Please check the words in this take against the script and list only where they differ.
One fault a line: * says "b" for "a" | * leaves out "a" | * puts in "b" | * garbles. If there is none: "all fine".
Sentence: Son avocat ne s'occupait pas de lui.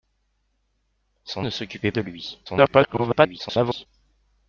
* leaves out "avocat"
* leaves out "pas"
* garbles